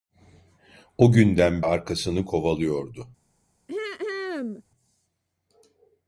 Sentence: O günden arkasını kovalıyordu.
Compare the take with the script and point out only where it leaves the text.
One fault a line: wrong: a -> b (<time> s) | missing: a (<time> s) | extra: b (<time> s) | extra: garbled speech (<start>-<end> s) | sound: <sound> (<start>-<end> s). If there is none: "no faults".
sound: throat clearing (3.7-4.6 s)